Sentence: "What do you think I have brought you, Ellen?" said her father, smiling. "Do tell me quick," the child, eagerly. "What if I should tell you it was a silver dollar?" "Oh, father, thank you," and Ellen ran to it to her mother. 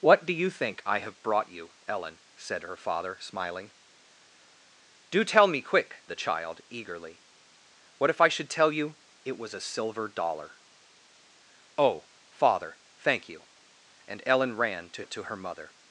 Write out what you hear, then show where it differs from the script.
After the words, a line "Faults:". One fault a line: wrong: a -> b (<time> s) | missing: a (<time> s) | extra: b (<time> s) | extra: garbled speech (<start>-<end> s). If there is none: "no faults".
"What do you think I have brought you, Ellen?" said her father, smiling. "Do tell me quick," the child, eagerly. "What if I should tell you it was a silver dollar?" "Oh, father, thank you," and Ellen ran to it to her mother.
Faults:
no faults